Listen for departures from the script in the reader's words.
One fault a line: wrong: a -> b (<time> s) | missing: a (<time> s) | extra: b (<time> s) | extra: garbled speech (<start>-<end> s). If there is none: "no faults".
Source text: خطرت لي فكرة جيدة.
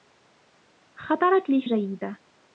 missing: فكرة (1.6 s)